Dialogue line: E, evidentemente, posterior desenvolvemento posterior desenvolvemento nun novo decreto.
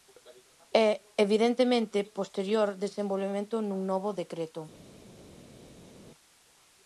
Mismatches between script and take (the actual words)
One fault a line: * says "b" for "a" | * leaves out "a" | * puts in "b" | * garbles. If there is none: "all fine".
* leaves out "posterior desenvolvemento"